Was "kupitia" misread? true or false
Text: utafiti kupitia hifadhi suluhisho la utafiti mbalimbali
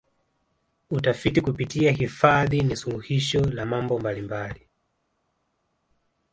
false